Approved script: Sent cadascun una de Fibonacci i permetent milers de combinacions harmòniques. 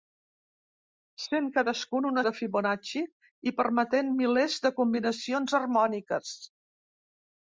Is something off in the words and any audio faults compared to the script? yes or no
no